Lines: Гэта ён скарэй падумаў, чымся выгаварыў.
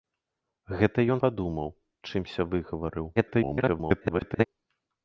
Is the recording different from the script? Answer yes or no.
yes